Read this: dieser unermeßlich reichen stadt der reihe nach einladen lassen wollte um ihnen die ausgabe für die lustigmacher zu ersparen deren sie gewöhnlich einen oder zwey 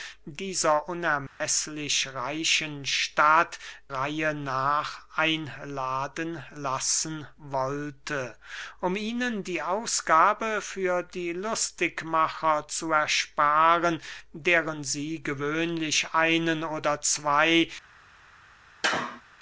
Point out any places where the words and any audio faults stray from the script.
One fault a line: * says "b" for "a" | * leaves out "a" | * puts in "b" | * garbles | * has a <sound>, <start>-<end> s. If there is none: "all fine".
* has a dropout, 1.3-1.4 s
* leaves out "der"
* has a sneeze, 18.8-19.2 s